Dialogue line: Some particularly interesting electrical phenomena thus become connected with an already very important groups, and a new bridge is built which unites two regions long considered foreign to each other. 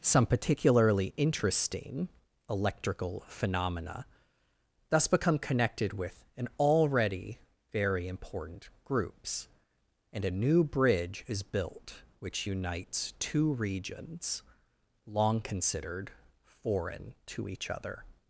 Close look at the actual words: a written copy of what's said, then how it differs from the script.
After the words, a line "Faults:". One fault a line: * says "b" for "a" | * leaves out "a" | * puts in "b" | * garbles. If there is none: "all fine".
Some particularly interesting electrical phenomena thus become connected with an already very important groups, and a new bridge is built which unites two regions long considered foreign to each other.
Faults:
all fine